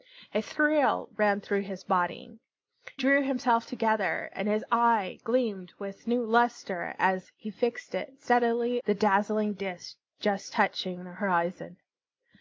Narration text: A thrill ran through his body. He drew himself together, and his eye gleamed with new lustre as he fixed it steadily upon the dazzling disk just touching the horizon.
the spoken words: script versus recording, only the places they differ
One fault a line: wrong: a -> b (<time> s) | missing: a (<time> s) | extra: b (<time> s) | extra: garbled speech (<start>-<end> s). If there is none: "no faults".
missing: He (2.4 s)
missing: upon (8.8 s)